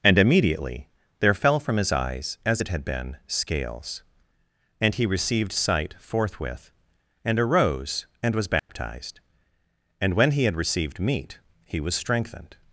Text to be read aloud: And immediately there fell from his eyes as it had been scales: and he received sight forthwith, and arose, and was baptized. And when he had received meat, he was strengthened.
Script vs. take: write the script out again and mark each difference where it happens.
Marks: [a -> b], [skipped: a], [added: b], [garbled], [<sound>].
And immediately there fell from his eyes as it had been scales: and he received sight forthwith, and arose, and was baptized. [dropout] And when he had received meat, he was strengthened.